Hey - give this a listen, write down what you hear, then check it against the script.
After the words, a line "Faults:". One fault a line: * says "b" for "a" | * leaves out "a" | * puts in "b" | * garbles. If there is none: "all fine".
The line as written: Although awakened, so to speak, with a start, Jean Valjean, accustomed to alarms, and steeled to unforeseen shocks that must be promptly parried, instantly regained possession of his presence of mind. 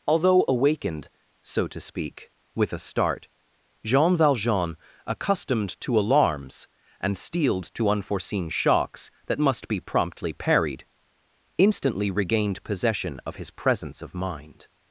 Although awakened, so to speak, with a start, Jean Valjean, accustomed to alarms, and steeled to unforeseen shocks that must be promptly parried, instantly regained possession of his presence of mind.
Faults:
all fine